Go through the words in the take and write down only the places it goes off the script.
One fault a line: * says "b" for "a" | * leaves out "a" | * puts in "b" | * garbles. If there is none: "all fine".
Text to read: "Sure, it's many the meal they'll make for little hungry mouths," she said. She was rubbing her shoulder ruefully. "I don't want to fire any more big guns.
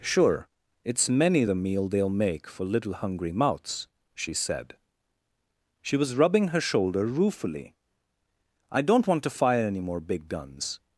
all fine